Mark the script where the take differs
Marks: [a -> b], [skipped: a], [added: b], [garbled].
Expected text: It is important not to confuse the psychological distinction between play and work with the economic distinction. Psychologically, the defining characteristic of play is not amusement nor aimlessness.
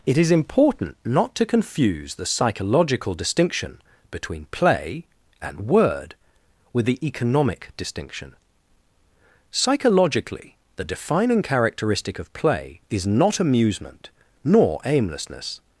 It is important not to confuse the psychological distinction between play and [work -> word] with the economic distinction. Psychologically, the defining characteristic of play is not amusement nor aimlessness.